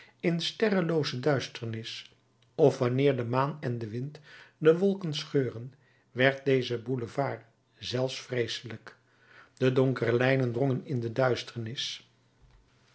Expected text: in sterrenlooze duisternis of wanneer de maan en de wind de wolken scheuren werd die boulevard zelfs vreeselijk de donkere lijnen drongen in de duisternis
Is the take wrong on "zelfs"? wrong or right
right